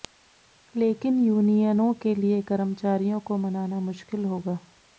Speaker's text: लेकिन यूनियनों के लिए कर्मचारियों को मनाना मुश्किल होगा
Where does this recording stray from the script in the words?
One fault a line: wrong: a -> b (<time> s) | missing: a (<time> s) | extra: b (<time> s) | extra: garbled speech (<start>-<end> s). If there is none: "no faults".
no faults